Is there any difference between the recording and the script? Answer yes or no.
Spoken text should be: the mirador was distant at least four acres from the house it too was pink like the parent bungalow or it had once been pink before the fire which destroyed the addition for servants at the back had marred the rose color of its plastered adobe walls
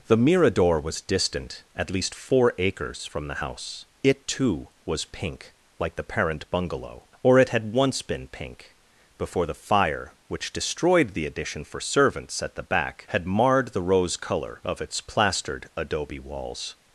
no